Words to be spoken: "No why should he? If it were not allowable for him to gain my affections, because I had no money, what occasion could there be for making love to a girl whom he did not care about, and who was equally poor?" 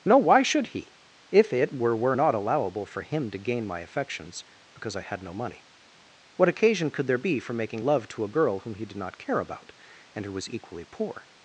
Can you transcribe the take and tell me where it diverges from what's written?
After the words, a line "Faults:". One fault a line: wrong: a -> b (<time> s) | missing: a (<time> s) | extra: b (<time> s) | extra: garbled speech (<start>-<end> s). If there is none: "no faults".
"No why should he? If it were were not allowable for him to gain my affections, because I had no money, what occasion could there be for making love to a girl whom he did not care about, and who was equally poor?"
Faults:
extra: were (1.9 s)